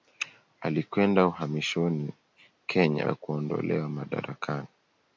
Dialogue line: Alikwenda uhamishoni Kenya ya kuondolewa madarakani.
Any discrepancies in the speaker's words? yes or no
no